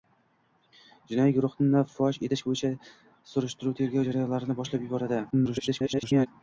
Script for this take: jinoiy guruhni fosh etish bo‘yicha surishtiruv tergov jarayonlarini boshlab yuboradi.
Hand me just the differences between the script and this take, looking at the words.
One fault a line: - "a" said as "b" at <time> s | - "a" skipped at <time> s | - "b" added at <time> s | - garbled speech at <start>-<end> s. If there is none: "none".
- garbled speech at 5.3-6.3 s